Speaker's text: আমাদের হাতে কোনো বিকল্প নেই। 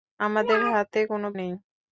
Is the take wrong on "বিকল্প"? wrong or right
wrong